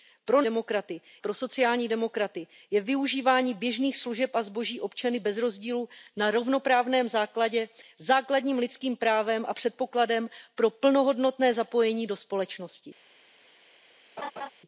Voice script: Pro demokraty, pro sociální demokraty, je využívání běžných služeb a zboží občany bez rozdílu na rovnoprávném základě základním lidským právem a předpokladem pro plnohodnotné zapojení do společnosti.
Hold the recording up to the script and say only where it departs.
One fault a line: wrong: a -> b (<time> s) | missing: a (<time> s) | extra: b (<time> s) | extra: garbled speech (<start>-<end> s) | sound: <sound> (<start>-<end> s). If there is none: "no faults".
sound: laugh (14.2-14.5 s)